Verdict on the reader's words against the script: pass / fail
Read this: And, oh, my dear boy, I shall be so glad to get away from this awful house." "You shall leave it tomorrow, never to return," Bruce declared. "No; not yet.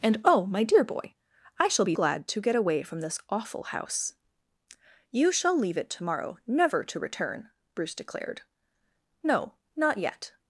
fail